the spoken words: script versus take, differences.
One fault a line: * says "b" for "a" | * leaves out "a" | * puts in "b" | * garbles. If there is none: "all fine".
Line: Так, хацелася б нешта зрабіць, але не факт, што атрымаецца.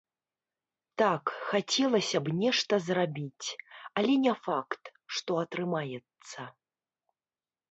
all fine